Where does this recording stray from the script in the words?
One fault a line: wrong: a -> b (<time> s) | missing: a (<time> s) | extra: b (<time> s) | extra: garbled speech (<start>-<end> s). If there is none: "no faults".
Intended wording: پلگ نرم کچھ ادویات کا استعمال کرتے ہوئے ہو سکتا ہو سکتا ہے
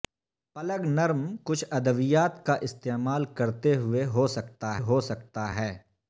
no faults